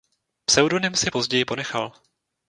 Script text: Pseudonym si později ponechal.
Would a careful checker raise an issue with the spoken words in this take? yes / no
no